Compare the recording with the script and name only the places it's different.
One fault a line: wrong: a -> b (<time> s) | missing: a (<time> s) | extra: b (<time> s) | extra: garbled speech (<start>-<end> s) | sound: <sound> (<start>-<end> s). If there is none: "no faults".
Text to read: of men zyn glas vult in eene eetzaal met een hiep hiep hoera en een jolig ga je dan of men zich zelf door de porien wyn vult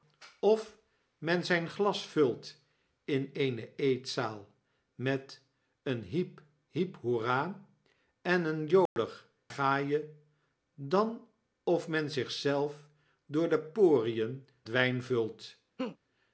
sound: dropout (8.9-9.0 s)
sound: laugh (15.8-16.0 s)